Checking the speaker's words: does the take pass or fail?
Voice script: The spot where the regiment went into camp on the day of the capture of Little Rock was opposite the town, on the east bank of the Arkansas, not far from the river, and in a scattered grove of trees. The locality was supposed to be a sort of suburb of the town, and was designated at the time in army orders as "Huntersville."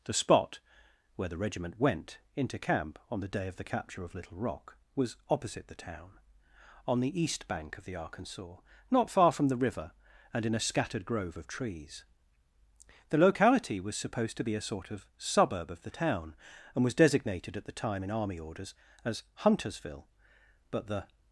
fail